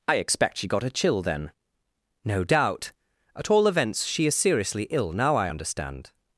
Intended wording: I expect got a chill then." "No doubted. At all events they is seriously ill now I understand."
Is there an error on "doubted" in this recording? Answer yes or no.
yes